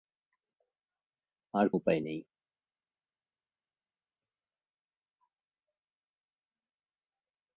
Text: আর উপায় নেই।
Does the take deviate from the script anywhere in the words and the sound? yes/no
no